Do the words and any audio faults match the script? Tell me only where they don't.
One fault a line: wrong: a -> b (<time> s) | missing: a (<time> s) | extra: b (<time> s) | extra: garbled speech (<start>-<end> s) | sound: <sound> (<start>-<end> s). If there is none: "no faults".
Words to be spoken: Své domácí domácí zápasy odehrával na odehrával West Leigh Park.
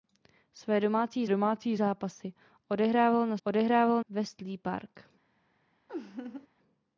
sound: laugh (5.9-6.5 s)